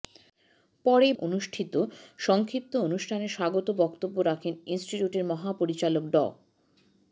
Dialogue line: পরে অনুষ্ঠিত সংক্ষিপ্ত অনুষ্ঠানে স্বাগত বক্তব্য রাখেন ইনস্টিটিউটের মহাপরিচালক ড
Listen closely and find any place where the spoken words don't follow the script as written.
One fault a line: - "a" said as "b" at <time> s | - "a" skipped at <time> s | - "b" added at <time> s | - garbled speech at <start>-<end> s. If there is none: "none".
none